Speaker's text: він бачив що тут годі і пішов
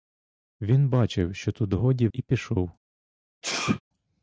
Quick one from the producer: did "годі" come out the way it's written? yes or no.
yes